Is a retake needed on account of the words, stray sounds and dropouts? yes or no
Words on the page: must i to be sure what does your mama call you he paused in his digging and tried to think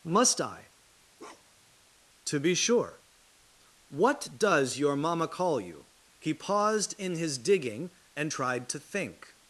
yes